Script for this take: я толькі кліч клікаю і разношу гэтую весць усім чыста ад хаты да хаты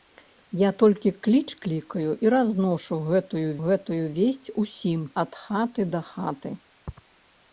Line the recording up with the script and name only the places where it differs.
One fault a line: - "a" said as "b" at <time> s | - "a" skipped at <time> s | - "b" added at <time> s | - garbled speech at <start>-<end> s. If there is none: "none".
- "гэтую" added at 3.7 s
- "чыста" skipped at 5.0 s